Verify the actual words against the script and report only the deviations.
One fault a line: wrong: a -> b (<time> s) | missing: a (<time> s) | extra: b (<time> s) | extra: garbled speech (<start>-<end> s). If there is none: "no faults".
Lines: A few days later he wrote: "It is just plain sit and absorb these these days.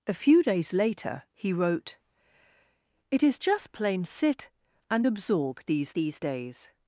no faults